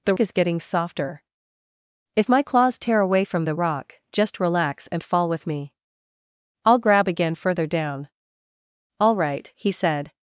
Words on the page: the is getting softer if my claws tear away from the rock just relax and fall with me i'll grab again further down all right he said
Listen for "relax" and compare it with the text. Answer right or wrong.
right